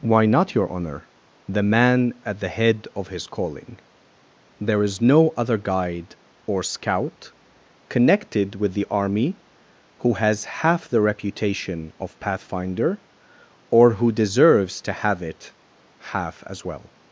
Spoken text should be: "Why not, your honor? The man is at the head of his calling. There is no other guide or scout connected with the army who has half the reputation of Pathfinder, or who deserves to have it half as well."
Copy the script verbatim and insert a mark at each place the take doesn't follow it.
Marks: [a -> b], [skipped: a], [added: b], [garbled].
"Why not, your honor? The man [skipped: is] at the head of his calling. There is no other guide or scout connected with the army who has half the reputation of Pathfinder, or who deserves to have it half as well."